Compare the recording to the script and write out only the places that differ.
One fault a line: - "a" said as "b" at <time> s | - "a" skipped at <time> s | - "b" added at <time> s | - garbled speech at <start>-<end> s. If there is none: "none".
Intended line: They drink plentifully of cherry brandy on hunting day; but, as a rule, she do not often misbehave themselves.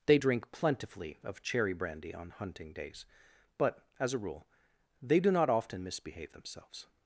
- "day" said as "days" at 2.7 s
- "she" said as "they" at 5.0 s